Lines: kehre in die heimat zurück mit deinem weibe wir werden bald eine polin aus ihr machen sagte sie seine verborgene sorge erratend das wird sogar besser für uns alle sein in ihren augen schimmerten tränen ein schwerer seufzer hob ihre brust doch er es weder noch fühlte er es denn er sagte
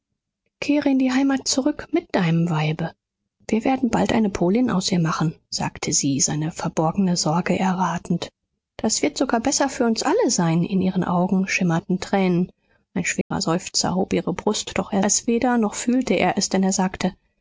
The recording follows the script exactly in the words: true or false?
true